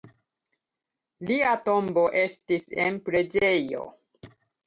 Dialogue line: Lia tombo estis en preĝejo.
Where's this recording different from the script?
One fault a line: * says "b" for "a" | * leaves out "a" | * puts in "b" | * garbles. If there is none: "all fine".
all fine